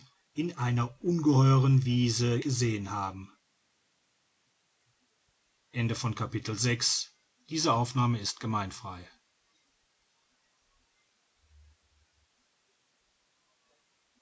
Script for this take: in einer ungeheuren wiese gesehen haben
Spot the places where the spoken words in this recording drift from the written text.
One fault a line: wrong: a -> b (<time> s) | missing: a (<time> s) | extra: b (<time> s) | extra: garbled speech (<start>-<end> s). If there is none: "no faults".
no faults